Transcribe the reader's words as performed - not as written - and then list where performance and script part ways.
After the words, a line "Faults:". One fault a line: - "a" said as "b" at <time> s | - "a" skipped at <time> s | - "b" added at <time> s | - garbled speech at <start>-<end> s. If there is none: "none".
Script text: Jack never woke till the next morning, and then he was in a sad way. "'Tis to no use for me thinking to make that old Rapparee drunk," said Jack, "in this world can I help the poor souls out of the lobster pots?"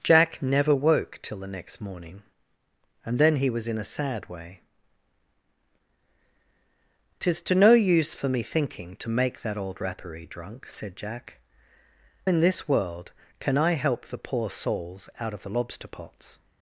Jack never woke till the next morning, and then he was in a sad way. "'Tis to no use for me thinking to make that old Rapparee drunk," said Jack, "in this world can I help the poor souls out of the lobster pots?"
Faults:
none